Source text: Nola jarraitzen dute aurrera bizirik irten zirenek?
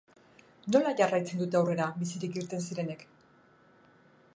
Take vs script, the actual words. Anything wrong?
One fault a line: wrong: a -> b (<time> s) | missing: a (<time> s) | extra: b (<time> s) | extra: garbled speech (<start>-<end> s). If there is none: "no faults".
no faults